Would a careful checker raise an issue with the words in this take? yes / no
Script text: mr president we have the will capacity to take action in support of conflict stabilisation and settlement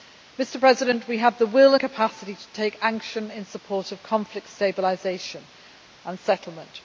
no